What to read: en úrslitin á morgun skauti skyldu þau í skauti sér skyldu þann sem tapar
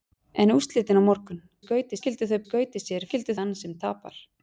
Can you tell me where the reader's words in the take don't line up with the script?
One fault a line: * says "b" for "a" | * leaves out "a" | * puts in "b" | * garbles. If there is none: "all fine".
all fine